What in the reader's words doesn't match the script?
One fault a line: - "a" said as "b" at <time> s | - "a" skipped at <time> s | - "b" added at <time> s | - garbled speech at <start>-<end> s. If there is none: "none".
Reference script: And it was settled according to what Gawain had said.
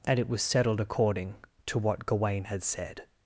none